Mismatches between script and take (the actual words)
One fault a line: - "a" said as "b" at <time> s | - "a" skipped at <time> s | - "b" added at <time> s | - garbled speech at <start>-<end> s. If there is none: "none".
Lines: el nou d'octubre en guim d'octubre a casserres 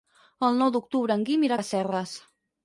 - "d'octubre" said as "irà" at 1.5 s